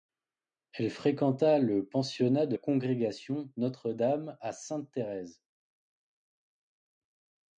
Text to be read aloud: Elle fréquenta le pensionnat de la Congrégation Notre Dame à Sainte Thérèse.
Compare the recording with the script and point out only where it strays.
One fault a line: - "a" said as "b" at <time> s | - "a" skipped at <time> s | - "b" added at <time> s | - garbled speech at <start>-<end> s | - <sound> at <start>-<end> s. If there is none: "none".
- "la" skipped at 2.5 s